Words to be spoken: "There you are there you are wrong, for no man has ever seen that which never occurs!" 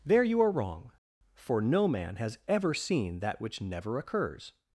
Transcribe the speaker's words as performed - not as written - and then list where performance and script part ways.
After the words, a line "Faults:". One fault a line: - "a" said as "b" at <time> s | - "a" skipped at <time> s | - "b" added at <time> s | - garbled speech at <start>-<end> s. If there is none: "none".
"There you are wrong, for no man has ever seen that which never occurs!"
Faults:
- "there you are" skipped at 0.5 s